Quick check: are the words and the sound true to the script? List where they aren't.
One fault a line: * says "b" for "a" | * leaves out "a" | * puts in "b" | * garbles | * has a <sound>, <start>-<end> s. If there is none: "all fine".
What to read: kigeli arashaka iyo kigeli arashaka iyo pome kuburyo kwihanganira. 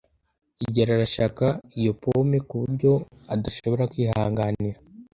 * leaves out "kigeli arashaka iyo"
* puts in "adashobora"